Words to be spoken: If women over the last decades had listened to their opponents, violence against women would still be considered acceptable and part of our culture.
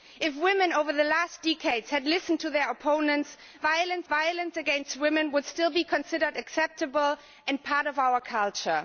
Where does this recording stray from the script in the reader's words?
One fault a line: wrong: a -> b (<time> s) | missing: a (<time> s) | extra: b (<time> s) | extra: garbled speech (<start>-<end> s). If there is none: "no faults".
extra: violence (4.1 s)